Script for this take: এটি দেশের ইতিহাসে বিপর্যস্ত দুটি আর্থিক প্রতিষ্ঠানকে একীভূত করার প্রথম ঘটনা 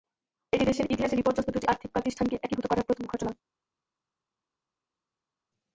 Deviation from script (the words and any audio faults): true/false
false